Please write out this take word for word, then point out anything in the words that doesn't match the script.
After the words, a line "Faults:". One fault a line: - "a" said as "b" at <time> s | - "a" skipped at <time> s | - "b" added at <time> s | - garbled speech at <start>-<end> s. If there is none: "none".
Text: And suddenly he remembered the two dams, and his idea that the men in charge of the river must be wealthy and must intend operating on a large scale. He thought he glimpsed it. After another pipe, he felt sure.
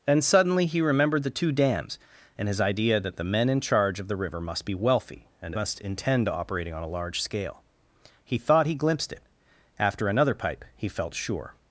And suddenly he remembered the two dams, and his idea that the men in charge of the river must be wealthy and must intend operating on a large scale. He thought he glimpsed it. After another pipe, he felt sure.
Faults:
none